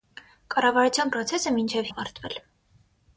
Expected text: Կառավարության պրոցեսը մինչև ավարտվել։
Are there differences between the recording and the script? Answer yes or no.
no